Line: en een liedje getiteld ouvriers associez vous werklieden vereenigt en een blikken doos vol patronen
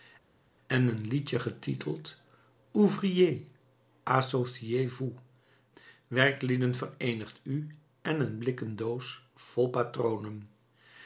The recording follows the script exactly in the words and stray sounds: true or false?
false